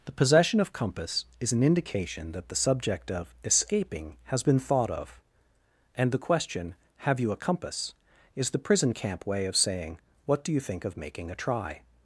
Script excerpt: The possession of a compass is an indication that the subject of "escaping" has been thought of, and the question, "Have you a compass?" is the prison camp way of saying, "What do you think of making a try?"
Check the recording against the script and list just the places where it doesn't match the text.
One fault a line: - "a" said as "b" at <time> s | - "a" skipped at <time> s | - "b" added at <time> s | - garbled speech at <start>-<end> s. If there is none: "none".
- "a" skipped at 0.7 s